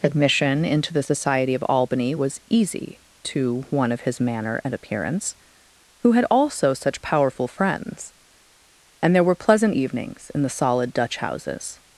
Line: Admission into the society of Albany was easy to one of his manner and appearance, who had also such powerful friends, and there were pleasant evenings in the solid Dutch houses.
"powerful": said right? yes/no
yes